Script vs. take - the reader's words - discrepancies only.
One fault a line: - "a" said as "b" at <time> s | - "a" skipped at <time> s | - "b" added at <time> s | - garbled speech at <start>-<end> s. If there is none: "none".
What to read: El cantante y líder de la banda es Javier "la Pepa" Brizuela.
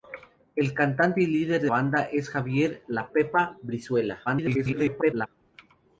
- "la" skipped at 1.7 s
- garbled speech at 4.3-5.3 s